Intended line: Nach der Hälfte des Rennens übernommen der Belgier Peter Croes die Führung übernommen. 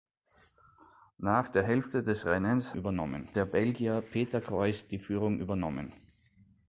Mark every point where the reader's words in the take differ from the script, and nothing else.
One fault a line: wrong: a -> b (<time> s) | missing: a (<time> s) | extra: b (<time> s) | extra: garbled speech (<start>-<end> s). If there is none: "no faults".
no faults